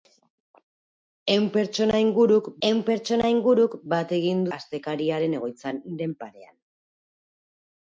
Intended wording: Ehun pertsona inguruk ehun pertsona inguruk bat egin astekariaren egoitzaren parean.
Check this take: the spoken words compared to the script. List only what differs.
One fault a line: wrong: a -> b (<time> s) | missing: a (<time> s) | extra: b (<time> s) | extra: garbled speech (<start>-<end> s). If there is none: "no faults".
no faults